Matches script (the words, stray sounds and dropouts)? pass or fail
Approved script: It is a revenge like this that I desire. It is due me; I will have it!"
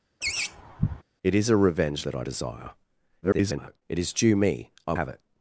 fail